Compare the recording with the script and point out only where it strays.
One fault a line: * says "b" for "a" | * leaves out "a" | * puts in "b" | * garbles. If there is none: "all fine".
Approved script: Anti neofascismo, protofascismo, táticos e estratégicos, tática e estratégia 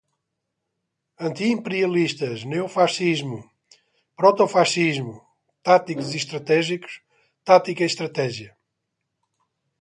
* puts in "imperialistas"